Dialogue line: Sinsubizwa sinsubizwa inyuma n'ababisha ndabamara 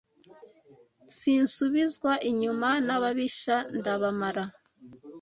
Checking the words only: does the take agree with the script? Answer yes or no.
no